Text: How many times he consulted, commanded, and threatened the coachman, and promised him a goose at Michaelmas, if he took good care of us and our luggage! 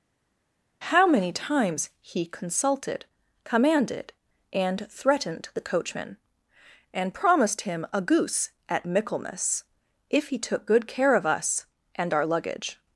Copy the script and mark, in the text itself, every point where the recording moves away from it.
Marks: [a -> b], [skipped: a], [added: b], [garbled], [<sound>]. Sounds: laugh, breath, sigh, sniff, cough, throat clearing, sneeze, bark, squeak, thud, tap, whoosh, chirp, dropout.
How many times he consulted, commanded, and threatened the coachman, and promised him a goose at Michaelmas, if he took good care of us and our luggage!